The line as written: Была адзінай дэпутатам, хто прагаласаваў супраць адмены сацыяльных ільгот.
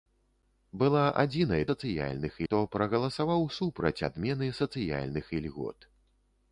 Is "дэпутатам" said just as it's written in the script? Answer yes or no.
no